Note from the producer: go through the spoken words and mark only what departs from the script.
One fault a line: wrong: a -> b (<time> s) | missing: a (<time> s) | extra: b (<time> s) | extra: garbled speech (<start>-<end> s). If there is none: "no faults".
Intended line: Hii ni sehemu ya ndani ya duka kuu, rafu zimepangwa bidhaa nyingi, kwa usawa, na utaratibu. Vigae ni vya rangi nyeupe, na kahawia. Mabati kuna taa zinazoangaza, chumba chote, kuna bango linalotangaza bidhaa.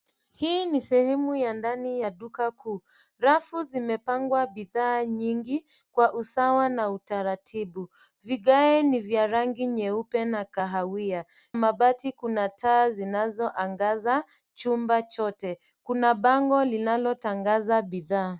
no faults